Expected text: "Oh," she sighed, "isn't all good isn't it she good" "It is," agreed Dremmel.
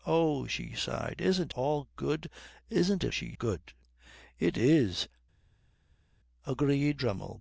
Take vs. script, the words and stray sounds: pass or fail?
pass